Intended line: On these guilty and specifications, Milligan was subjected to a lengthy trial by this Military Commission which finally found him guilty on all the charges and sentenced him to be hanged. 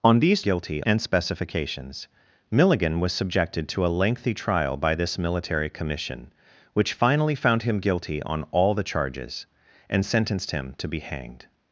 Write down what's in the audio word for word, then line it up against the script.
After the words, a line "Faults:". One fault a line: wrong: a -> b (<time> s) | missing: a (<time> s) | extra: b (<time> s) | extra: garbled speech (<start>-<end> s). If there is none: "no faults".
On these guilty and specifications, Milligan was subjected to a lengthy trial by this Military Commission which finally found him guilty on all the charges and sentenced him to be hanged.
Faults:
no faults